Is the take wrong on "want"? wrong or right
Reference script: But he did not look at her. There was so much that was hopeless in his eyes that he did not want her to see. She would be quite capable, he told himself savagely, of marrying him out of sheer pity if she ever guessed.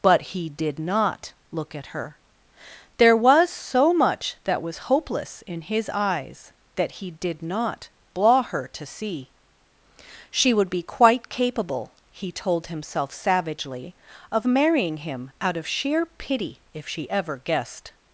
wrong